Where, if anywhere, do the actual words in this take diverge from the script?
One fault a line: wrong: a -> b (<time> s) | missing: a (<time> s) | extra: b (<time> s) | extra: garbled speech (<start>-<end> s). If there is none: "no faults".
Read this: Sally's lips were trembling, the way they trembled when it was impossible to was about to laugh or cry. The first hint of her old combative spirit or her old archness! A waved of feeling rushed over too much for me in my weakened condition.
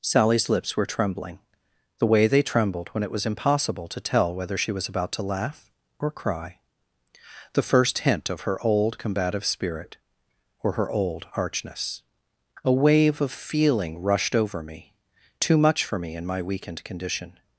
extra: tell whether she (4.0 s)
wrong: waved -> wave (12.7 s)
extra: me (14.6 s)